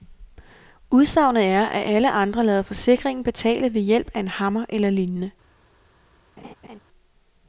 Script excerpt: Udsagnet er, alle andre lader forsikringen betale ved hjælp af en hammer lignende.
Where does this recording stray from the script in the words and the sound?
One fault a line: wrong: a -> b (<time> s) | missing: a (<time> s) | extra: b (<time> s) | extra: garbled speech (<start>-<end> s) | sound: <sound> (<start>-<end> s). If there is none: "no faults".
extra: at (1.6 s)
extra: eller (4.7 s)
sound: laugh (6.4-6.8 s)